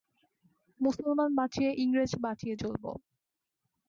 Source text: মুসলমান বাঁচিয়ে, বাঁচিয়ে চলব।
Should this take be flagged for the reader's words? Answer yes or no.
yes